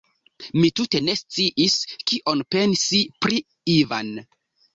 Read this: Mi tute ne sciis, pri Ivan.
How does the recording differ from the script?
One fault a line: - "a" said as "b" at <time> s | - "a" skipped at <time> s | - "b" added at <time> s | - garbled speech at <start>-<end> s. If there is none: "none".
- "kion pensi" added at 2.1 s